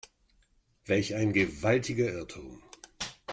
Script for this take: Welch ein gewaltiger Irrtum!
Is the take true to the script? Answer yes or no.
yes